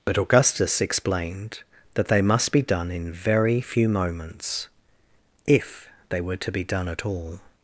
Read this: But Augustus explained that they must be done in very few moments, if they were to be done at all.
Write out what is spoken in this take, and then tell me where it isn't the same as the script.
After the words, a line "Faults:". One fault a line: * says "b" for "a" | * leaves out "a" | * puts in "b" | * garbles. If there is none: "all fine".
But Augustus explained that they must be done in very few moments, if they were to be done at all.
Faults:
all fine